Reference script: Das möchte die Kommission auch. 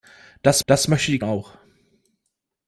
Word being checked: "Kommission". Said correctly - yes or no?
no